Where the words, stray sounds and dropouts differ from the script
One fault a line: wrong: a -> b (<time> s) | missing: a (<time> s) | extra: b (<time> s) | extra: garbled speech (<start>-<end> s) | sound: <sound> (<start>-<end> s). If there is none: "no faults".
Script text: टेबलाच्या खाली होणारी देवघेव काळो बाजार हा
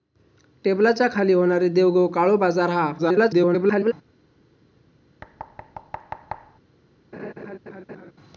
extra: garbled speech (3.0-3.9 s)
sound: thud (5.2-6.6 s)
sound: laugh (7.1-8.1 s)